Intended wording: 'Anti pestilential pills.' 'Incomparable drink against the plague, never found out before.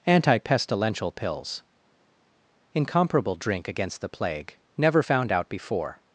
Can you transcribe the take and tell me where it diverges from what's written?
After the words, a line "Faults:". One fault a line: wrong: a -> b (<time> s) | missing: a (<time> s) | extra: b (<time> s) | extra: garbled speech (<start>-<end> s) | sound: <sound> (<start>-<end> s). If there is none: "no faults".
'Anti pestilential pills.' 'Incomparable drink against the plague, never found out before.
Faults:
no faults